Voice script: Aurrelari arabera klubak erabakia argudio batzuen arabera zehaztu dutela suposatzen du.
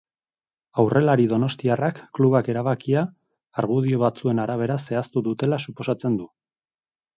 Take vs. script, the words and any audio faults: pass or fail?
fail